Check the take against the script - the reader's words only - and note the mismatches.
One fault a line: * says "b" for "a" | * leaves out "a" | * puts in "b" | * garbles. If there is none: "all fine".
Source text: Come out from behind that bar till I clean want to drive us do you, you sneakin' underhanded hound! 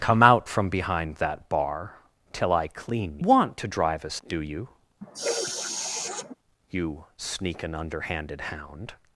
all fine